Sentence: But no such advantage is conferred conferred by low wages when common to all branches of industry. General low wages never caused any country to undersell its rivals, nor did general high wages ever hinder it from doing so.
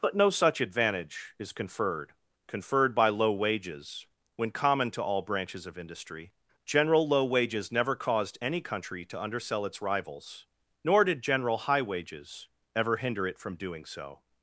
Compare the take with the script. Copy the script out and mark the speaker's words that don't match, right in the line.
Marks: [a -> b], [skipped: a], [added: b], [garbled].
But no such advantage is conferred conferred by low wages when common to all branches of industry. General low wages never caused any country to undersell its rivals, nor did general high wages ever hinder it from doing so.